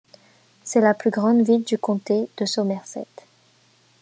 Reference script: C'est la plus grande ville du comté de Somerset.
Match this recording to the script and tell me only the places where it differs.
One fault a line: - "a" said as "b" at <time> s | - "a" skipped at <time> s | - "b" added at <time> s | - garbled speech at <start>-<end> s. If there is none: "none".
none